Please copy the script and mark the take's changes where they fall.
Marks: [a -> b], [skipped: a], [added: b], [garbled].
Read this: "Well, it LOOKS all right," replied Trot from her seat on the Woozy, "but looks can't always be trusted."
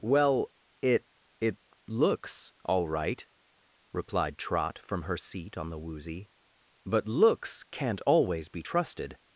"Well, it [added: it] LOOKS all right," replied Trot from her seat on the Woozy, "but looks can't always be trusted."